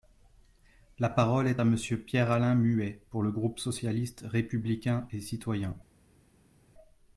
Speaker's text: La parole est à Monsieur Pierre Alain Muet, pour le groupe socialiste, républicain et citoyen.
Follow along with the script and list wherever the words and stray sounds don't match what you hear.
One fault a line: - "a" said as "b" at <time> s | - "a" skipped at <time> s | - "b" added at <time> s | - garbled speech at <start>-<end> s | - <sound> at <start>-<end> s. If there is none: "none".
none